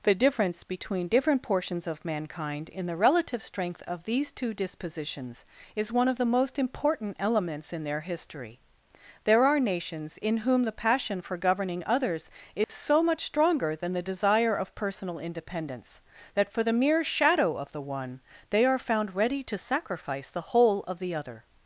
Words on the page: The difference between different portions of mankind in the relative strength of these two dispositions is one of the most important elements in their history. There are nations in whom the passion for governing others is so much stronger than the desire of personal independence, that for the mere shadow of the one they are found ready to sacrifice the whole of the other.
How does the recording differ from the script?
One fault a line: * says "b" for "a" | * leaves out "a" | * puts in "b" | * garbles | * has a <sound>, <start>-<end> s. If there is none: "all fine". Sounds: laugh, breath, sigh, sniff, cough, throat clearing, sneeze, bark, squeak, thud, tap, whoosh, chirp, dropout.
* has a dropout, 12.6-12.7 s